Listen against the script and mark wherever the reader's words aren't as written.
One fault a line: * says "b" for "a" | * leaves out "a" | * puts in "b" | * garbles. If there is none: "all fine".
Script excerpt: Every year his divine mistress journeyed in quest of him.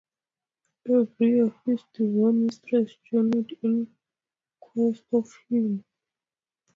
all fine